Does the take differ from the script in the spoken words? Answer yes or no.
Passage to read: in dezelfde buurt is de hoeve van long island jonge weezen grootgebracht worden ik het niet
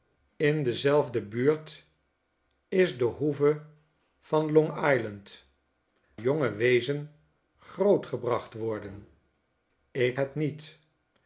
no